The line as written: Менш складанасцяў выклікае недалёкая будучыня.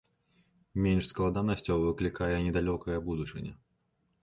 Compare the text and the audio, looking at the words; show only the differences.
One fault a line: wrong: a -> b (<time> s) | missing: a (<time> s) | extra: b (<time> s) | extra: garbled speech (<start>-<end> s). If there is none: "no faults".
no faults